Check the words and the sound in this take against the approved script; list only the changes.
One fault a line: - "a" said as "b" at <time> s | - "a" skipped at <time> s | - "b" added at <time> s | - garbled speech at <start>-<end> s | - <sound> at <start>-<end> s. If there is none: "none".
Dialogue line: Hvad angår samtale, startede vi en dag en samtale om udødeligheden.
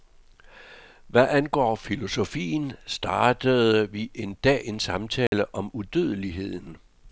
- "samtale" said as "filosofien" at 1.8 s
- dropout at 5.3-5.3 s